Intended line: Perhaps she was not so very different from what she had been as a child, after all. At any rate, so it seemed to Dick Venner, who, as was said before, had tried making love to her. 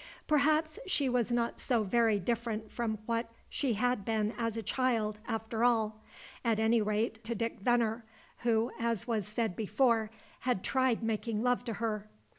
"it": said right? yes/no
no